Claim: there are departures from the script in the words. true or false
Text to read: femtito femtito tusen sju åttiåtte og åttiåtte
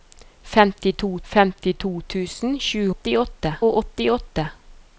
false